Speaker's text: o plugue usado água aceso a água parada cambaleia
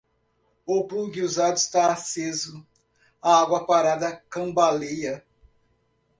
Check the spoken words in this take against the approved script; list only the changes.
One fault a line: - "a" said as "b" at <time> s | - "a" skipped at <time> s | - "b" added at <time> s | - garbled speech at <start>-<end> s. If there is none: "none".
- "água" said as "está" at 1.6 s